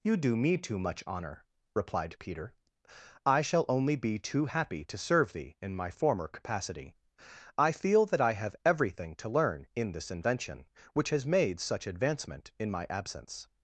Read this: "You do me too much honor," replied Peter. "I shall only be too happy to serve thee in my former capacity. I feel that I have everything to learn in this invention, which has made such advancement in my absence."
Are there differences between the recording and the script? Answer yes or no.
no